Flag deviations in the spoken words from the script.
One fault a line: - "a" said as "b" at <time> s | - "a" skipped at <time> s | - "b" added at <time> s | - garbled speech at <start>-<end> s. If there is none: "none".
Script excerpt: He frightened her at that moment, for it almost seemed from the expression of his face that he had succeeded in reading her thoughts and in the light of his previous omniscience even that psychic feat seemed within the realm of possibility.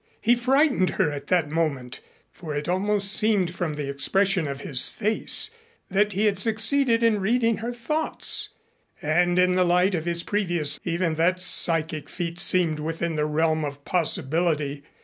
- "omniscience" skipped at 10.8 s